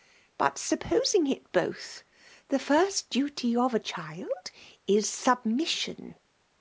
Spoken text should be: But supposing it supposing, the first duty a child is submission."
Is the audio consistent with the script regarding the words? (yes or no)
no